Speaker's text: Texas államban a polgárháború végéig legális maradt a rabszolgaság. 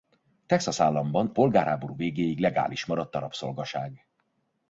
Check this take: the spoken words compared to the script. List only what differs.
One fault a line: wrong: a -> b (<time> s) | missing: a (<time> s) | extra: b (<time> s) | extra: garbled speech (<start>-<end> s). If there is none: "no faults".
missing: a (1.3 s)